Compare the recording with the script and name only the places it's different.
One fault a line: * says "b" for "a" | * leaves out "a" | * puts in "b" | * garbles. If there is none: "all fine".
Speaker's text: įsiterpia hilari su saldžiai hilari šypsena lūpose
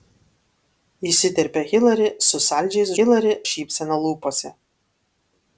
all fine